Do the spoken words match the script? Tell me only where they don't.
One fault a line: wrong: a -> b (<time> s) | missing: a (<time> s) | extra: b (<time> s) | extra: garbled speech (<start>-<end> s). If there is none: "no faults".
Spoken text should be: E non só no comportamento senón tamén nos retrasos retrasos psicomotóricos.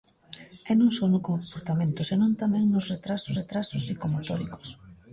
no faults